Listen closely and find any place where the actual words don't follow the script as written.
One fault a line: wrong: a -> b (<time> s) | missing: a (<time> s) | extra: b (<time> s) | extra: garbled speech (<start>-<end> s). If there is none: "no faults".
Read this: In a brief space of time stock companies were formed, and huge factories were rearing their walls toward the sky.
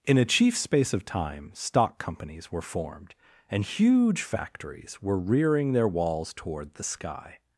wrong: brief -> chief (0.2 s)